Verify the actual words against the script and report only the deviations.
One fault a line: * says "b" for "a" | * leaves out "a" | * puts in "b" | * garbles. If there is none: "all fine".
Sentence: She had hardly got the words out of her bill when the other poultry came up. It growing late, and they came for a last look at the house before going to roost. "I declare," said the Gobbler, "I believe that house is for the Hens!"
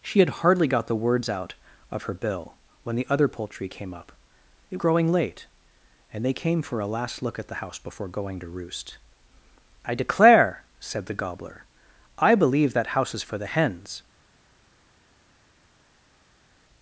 all fine